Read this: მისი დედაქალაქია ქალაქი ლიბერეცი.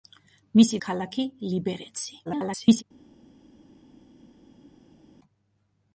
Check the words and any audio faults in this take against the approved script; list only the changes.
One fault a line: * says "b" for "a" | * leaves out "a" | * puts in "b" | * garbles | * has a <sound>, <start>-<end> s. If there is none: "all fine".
* leaves out "დედაქალაქია"
* garbles